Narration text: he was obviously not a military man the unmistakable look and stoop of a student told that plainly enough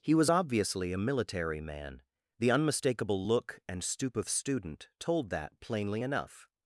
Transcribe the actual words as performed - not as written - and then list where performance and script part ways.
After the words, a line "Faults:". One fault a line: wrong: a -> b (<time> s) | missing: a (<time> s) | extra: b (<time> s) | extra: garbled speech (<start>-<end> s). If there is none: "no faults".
he was obviously a military man the unmistakable look and stoop of student told that plainly enough
Faults:
missing: not (0.9 s)
missing: a (4.3 s)